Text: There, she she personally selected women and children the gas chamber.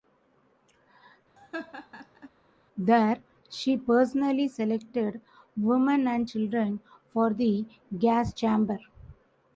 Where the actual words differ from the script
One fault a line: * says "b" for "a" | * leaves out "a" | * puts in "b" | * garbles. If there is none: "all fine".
* leaves out "she"
* puts in "for"